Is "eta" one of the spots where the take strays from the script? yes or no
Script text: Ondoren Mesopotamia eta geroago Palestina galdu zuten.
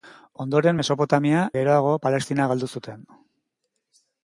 yes